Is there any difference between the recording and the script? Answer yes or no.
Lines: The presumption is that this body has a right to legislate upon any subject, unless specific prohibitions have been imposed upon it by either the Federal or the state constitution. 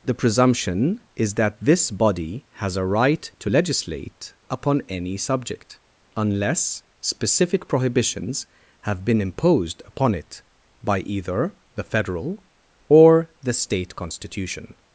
no